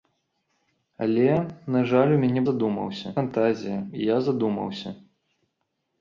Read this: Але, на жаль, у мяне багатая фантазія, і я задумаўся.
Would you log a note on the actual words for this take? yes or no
yes